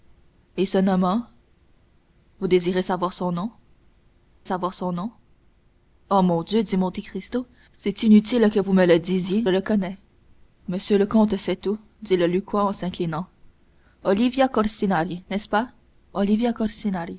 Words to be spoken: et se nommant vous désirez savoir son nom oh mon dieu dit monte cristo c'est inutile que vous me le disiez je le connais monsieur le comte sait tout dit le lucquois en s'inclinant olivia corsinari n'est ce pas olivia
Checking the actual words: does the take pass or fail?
fail